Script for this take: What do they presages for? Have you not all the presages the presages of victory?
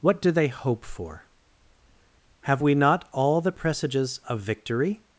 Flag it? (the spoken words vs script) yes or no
yes